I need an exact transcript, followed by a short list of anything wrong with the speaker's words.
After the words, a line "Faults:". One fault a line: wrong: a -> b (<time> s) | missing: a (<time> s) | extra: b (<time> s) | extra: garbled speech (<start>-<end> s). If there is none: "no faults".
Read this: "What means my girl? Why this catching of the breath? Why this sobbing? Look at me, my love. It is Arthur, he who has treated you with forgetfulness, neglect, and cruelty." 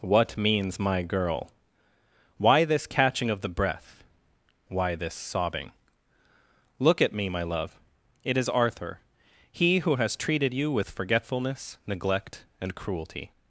"What means my girl? Why this catching of the breath? Why this sobbing? Look at me, my love. It is Arthur, he who has treated you with forgetfulness, neglect, and cruelty."
Faults:
no faults